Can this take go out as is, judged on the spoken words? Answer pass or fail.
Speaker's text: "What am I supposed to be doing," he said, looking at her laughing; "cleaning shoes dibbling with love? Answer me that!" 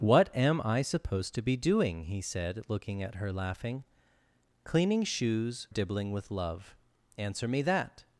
pass